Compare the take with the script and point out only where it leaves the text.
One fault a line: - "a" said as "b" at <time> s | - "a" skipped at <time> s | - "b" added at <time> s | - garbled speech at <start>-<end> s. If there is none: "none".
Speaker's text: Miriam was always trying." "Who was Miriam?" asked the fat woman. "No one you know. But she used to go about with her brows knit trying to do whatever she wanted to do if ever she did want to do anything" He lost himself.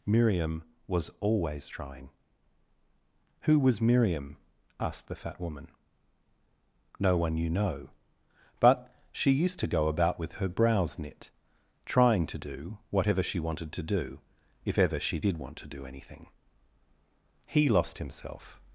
none